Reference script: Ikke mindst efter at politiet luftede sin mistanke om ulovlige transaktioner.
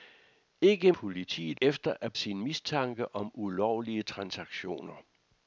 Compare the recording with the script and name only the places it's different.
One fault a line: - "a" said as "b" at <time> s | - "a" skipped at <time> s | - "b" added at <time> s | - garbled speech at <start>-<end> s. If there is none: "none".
- "mindst" said as "politiet" at 0.9 s
- "politiet luftede" skipped at 2.1 s